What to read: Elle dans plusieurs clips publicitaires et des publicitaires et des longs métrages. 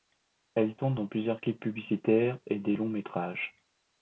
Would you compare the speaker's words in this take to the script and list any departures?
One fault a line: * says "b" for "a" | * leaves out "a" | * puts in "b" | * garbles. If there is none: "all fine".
* puts in "tourne"
* leaves out "publicitaires et des"